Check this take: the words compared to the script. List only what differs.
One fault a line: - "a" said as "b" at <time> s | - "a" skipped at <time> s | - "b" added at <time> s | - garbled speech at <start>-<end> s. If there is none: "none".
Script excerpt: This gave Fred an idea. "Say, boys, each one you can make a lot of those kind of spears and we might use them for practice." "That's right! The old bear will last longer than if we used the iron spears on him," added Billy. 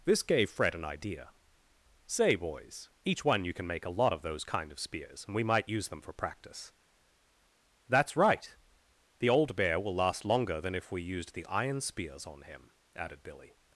none